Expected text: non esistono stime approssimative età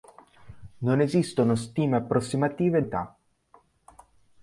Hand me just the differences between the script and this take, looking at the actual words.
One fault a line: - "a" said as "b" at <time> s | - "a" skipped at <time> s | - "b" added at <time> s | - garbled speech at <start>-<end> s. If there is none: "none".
none